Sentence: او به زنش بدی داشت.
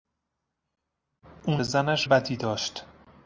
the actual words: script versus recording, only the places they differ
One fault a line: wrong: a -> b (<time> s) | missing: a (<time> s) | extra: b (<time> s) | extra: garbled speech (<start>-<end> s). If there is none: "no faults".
no faults